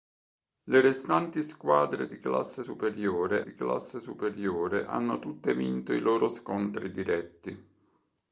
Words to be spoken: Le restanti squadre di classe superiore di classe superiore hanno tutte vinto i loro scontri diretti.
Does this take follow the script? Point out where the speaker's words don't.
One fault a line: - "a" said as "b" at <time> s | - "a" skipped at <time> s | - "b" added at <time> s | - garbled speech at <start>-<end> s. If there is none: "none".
none